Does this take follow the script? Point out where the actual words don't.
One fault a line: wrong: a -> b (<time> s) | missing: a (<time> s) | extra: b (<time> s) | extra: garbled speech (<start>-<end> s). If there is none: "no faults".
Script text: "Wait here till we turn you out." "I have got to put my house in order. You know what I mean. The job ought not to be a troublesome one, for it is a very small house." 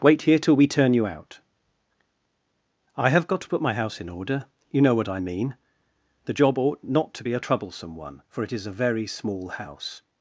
no faults